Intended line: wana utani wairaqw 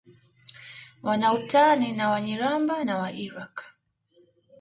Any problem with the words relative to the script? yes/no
yes